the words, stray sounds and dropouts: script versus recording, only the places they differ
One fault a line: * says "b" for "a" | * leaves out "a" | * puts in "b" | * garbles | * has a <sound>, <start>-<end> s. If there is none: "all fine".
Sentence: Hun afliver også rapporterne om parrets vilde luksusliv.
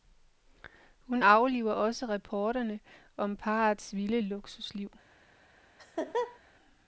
* has a laugh, 5.8-6.4 s